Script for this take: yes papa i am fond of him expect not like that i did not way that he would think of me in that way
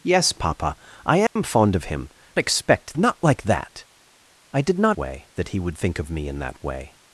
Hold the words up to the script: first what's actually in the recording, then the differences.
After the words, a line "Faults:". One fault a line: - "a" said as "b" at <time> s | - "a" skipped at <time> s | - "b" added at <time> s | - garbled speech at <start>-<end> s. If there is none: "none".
yes papa i am fond of him expect not like that i did not way that he would think of me in that way
Faults:
none